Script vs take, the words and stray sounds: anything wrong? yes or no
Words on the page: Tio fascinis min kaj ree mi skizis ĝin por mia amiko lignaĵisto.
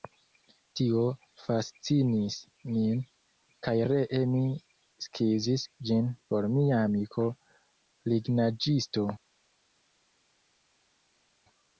no